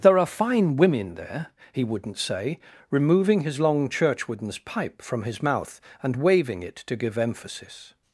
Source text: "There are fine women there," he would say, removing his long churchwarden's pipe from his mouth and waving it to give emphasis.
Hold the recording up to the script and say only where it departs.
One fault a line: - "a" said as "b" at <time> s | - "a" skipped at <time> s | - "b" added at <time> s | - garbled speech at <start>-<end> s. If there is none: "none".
- "would" said as "wouldn't" at 1.8 s